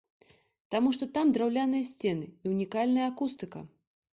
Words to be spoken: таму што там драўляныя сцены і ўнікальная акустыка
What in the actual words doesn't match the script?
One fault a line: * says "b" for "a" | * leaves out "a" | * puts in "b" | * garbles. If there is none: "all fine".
all fine